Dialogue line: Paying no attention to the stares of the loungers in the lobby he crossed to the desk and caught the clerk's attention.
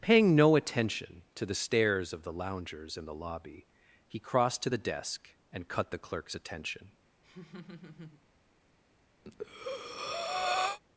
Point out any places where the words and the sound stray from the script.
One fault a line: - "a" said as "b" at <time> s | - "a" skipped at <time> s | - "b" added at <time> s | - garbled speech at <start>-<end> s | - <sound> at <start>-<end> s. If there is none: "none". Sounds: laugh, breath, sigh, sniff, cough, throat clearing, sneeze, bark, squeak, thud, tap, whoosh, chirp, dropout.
- "caught" said as "cut" at 5.7 s
- laugh at 7.2-8.2 s
- breath at 9.2-10.8 s